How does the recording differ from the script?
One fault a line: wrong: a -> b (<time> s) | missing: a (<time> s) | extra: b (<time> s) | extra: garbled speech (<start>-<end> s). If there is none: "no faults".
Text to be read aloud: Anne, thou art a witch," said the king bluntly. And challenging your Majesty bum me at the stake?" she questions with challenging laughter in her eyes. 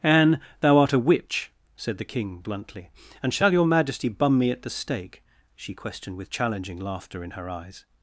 wrong: challenging -> shall (3.3 s)
wrong: questions -> questioned (5.7 s)